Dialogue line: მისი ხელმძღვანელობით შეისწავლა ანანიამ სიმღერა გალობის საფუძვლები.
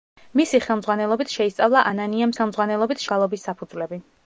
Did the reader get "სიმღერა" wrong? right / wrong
wrong